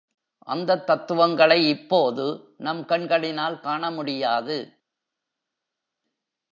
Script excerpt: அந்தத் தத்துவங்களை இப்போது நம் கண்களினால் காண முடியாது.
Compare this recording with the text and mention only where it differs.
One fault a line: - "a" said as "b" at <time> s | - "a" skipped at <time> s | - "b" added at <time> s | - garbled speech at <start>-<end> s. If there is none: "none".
none